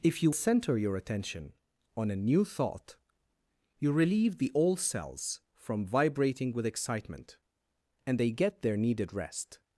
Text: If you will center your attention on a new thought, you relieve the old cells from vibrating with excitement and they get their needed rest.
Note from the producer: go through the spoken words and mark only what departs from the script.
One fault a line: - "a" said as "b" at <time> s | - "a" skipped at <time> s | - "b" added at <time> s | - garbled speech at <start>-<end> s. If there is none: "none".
- "will" skipped at 0.3 s